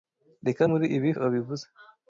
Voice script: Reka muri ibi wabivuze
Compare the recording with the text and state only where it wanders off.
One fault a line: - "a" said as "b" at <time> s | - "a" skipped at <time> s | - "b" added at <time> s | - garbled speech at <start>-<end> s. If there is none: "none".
none